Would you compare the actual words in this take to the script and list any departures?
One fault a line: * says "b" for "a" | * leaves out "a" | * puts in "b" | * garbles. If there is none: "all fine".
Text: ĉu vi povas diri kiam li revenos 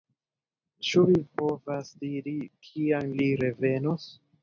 all fine